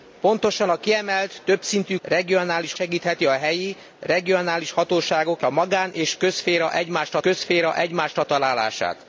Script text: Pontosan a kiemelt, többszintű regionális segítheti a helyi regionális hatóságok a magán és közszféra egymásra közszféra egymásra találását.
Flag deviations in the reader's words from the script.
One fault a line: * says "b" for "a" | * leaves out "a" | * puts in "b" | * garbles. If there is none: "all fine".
all fine